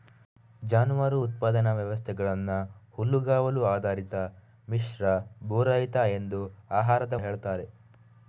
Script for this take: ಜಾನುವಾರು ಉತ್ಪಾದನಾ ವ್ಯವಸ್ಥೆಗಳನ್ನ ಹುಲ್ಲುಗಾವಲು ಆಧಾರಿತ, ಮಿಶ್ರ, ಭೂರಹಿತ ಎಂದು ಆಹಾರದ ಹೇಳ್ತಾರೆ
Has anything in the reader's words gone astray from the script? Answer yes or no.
no